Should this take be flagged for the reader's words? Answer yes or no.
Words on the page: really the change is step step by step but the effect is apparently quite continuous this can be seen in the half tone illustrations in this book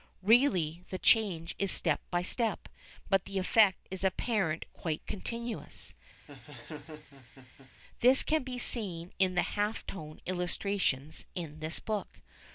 yes